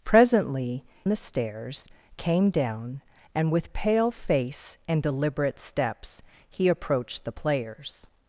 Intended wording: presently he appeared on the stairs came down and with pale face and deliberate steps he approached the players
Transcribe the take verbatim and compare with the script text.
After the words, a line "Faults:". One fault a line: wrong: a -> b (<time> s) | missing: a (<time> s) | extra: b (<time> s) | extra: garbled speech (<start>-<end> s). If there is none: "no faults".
presently the stairs came down and with pale face and deliberate steps he approached the players
Faults:
missing: he appeared on (0.8 s)